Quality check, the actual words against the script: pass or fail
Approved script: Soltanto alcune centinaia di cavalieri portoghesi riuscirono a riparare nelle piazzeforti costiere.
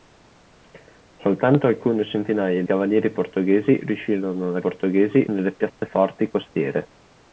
fail